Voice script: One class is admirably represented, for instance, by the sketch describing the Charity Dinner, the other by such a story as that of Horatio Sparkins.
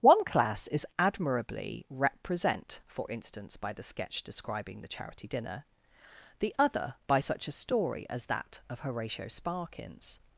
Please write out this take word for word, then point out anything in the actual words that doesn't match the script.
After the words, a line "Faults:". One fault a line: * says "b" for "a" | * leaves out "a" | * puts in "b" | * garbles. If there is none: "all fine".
One class is admirably represent, for instance, by the sketch describing the Charity Dinner, the other by such a story as that of Horatio Sparkins.
Faults:
* says "represent" for "represented"